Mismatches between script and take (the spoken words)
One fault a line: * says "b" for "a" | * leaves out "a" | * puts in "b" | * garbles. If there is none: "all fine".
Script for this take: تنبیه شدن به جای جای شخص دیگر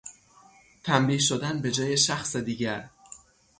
* leaves out "جای"